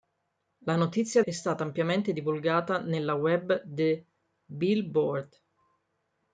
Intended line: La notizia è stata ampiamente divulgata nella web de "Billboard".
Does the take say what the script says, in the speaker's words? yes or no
yes